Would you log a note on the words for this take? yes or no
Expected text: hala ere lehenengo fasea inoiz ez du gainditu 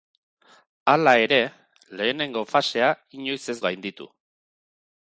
yes